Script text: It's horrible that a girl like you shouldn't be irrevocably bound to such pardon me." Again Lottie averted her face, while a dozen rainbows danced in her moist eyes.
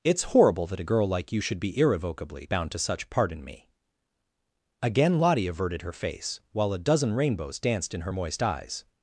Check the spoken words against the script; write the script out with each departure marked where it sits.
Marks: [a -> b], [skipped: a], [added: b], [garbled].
It's horrible that a girl like you [shouldn't -> should] be irrevocably bound to such pardon me." Again Lottie averted her face, while a dozen rainbows danced in her moist eyes.